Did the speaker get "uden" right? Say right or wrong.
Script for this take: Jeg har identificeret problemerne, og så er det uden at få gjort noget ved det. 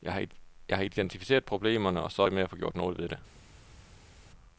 wrong